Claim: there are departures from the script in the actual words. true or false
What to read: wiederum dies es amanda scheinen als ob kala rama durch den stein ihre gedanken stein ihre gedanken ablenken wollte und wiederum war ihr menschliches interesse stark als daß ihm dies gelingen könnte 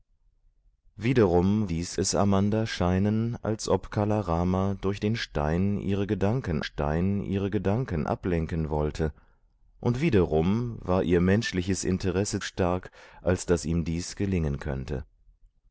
false